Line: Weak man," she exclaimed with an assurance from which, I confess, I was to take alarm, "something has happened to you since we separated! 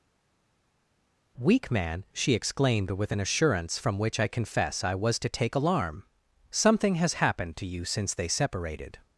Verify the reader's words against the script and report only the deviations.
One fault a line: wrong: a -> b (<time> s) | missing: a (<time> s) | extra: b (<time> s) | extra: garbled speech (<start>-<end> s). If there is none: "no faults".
wrong: we -> they (8.1 s)